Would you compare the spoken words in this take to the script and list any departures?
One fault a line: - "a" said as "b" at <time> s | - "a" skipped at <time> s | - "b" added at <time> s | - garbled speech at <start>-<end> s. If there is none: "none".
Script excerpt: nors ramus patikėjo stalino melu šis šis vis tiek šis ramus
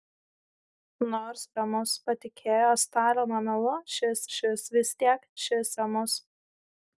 none